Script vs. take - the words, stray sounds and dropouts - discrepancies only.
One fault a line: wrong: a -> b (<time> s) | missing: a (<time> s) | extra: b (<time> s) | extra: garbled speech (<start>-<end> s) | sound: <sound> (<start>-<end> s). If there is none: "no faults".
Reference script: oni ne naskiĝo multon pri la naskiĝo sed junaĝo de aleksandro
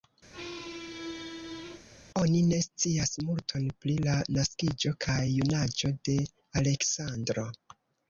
sound: squeak (0.3-1.9 s)
wrong: naskiĝo -> scias (2.7 s)
wrong: sed -> kaj (5.1 s)